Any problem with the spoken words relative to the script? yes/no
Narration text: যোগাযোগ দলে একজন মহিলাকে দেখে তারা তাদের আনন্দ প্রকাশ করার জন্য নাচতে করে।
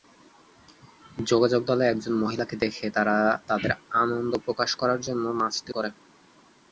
no